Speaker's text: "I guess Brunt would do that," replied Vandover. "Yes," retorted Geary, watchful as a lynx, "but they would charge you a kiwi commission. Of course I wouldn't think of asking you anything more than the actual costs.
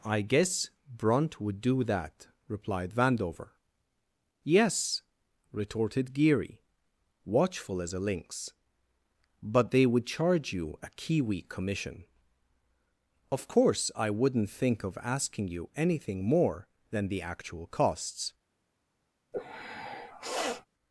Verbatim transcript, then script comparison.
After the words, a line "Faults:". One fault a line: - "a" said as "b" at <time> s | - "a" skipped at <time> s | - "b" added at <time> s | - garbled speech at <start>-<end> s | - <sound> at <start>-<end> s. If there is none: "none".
"I guess Brunt would do that," replied Vandover. "Yes," retorted Geary, watchful as a lynx, "but they would charge you a kiwi commission. Of course I wouldn't think of asking you anything more than the actual costs.
Faults:
- sniff at 19.3-20.7 s